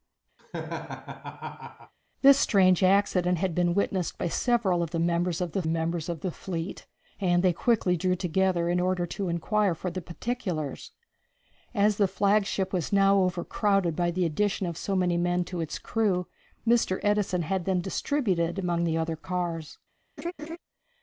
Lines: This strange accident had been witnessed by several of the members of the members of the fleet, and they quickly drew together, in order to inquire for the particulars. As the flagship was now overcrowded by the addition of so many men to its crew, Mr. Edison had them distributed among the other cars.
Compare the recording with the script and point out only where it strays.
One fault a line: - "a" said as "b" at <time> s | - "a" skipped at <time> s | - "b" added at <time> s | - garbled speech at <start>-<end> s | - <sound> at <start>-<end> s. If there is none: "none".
- laugh at 0.4-1.9 s
- laugh at 20.2-20.6 s